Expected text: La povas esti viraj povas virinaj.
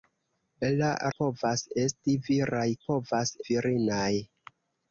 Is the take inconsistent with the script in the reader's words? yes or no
no